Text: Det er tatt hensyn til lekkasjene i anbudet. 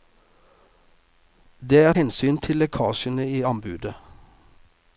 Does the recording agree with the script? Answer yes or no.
no